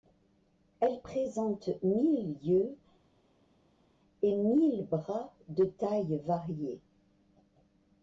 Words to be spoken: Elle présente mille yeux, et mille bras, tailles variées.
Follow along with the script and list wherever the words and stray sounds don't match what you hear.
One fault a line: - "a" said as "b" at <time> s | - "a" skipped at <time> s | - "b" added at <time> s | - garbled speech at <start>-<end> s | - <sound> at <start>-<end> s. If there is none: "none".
- "de" added at 5.5 s